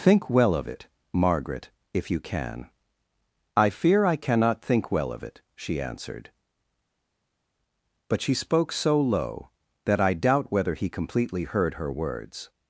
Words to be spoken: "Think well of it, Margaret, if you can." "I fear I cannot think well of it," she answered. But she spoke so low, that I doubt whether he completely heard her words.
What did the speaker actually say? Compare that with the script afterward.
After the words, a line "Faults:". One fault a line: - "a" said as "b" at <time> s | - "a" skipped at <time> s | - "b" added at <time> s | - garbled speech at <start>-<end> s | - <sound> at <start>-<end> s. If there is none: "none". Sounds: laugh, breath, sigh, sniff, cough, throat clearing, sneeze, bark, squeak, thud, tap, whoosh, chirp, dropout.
"Think well of it, Margaret, if you can." "I fear I cannot think well of it," she answered. But she spoke so low, that I doubt whether he completely heard her words.
Faults:
none